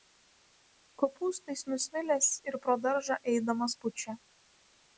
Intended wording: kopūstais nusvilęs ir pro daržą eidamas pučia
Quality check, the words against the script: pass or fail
pass